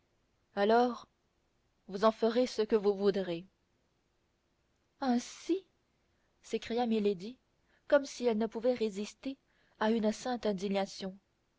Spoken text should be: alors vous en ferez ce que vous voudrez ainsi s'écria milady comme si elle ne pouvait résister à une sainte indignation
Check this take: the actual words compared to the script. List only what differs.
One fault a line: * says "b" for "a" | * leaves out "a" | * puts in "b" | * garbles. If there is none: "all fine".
all fine